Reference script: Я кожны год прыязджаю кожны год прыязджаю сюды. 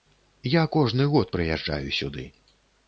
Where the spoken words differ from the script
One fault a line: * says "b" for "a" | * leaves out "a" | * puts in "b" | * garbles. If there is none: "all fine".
* leaves out "кожны год прыязджаю"